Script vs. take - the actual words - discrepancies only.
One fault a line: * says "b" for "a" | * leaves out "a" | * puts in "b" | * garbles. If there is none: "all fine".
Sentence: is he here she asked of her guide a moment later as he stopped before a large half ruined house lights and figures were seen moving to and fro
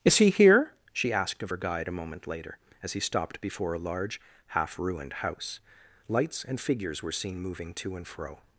all fine